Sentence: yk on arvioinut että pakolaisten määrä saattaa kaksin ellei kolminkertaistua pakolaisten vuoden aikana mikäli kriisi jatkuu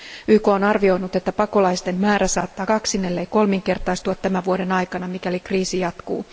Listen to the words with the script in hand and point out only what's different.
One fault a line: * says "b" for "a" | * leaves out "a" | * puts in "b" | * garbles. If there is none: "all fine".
* says "tämän" for "pakolaisten"